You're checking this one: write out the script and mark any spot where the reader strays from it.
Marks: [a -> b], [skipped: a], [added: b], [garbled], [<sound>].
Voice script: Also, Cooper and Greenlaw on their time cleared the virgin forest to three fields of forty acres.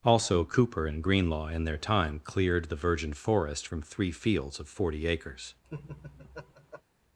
Also, Cooper and Greenlaw [on -> in] their time cleared the virgin forest [to -> from] three fields of forty acres. [laugh]